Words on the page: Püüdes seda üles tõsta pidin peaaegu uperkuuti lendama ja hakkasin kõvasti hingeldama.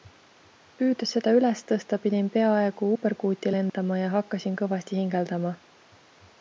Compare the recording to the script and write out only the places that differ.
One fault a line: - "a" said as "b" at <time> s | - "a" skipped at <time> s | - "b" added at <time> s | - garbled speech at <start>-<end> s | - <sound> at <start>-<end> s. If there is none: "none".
- dropout at 3.7-3.7 s